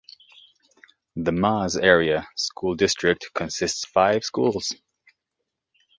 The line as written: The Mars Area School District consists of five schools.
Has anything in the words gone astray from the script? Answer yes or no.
yes